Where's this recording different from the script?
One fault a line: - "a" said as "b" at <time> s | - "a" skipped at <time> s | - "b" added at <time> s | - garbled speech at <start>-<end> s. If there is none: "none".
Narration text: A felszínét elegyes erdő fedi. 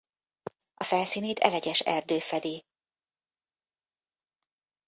none